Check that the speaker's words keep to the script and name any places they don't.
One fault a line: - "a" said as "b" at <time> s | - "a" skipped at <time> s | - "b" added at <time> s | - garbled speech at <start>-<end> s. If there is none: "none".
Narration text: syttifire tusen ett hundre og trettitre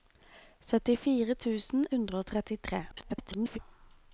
- "ett" skipped at 1.9 s
- garbled speech at 2.9-3.6 s